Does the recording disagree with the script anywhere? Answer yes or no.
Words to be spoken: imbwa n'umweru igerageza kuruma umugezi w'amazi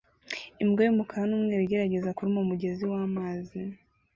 yes